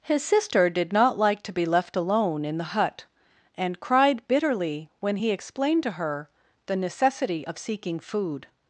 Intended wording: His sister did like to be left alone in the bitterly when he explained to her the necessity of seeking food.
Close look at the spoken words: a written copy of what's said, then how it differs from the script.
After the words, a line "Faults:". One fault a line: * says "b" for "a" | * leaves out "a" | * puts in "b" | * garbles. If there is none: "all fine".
His sister did not like to be left alone in the hut and cried bitterly when he explained to her the necessity of seeking food.
Faults:
* puts in "not"
* puts in "hut and cried"